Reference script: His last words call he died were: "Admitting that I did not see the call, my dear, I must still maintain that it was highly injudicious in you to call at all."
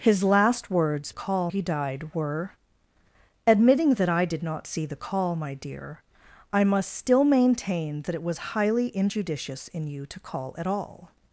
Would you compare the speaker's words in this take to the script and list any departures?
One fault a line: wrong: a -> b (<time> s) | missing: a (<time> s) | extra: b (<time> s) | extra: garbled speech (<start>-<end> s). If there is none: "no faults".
no faults